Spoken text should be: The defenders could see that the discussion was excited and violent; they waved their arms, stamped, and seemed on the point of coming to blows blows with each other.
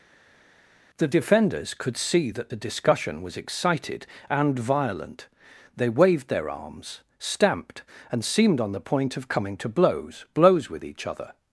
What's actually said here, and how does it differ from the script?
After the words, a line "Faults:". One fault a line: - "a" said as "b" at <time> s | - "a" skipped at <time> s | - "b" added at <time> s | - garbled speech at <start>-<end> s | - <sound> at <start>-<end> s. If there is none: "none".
The defenders could see that the discussion was excited and violent; they waved their arms, stamped, and seemed on the point of coming to blows blows with each other.
Faults:
none